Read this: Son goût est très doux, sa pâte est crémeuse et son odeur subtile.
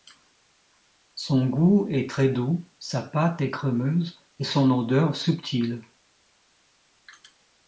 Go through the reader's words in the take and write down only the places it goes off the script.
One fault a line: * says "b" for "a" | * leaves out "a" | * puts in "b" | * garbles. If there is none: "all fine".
all fine